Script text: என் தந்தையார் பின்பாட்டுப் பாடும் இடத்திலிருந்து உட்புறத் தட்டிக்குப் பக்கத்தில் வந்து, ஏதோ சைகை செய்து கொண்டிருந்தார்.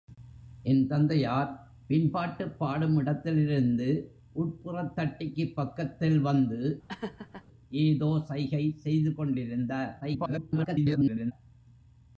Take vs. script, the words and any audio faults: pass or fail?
fail